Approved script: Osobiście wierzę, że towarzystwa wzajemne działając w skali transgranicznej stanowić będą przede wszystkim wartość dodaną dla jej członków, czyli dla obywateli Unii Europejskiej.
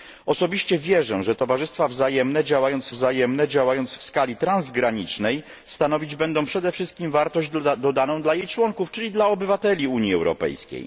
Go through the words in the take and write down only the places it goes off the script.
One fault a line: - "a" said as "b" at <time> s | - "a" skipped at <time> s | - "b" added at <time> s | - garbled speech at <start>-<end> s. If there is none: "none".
- "wzajemne działając" added at 2.9 s